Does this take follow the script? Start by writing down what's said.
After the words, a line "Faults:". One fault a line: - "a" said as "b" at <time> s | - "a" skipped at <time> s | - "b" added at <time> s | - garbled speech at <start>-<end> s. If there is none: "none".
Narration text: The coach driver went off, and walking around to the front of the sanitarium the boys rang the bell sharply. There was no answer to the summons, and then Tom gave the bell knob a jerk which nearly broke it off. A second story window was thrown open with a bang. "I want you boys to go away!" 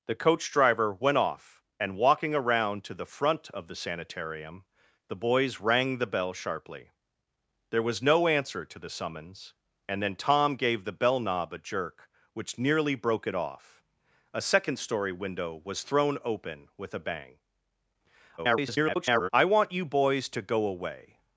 The coach driver went off, and walking around to the front of the sanitarium the boys rang the bell sharply. There was no answer to the summons, and then Tom gave the bell knob a jerk which nearly broke it off. A second story window was thrown open with a bang. [garbled] "I want you boys to go away!"
Faults:
- garbled speech at 18.4-19.3 s